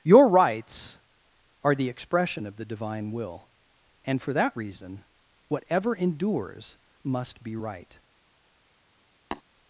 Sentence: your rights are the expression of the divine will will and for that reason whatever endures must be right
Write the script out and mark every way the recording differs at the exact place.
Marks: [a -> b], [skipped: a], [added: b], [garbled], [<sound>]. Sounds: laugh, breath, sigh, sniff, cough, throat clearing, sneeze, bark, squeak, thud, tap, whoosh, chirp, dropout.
your rights are the expression of the divine will [skipped: will] and for that reason whatever endures must be right [tap]